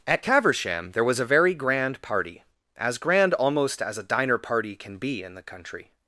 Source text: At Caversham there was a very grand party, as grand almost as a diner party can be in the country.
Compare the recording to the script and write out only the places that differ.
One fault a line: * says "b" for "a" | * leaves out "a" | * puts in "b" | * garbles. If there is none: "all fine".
all fine